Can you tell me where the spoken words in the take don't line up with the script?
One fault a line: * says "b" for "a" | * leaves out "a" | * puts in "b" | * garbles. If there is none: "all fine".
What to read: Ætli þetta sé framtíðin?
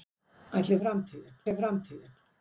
* says "framtíðin" for "þetta"